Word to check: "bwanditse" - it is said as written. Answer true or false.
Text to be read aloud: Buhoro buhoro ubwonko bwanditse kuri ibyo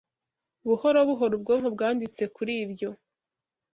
true